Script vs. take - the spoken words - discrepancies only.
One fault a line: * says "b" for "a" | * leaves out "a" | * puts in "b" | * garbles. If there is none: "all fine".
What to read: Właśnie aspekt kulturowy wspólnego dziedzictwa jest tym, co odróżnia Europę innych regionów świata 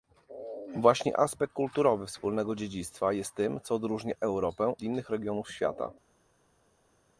all fine